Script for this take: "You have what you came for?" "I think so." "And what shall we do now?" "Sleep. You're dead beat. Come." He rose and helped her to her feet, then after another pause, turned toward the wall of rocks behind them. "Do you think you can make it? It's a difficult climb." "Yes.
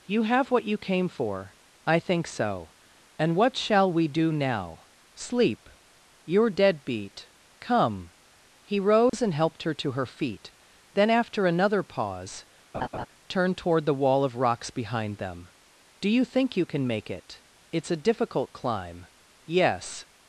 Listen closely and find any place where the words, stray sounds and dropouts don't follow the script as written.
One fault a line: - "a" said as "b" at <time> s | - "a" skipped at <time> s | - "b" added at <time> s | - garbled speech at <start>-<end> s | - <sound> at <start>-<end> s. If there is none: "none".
- dropout at 9.1-9.1 s
- laugh at 12.7-13.1 s